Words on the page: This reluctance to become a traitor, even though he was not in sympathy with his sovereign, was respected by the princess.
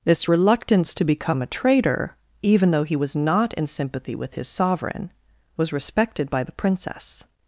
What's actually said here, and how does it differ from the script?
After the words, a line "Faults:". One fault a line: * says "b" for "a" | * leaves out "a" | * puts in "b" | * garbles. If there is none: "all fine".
This reluctance to become a traitor, even though he was not in sympathy with his sovereign, was respected by the princess.
Faults:
all fine